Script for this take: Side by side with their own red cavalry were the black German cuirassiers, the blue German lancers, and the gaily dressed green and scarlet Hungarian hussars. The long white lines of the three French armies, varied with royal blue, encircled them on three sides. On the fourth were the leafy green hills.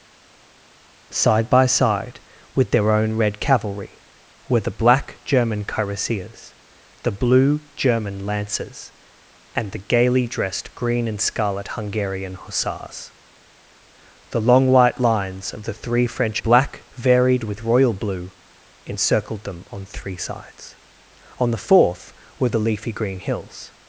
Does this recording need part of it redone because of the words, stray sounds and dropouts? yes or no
yes